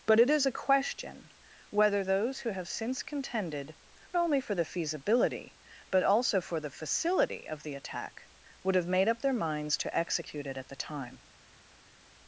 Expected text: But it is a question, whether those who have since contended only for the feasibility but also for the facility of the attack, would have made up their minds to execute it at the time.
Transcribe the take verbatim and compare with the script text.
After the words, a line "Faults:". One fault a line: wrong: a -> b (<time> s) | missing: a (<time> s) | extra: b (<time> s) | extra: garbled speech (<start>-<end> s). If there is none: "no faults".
But it is a question, whether those who have since contended only for the feasibility but also for the facility of the attack, would have made up their minds to execute it at the time.
Faults:
no faults